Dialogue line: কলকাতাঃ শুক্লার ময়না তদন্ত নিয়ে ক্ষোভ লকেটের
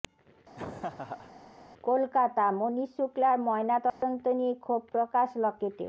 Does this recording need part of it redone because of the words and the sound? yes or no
yes